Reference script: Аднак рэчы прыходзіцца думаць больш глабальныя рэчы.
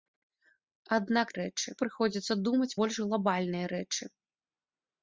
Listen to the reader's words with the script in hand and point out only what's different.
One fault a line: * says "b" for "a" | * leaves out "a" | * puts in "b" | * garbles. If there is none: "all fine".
all fine